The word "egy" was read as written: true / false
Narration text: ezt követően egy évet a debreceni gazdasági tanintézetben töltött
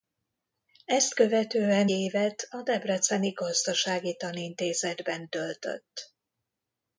false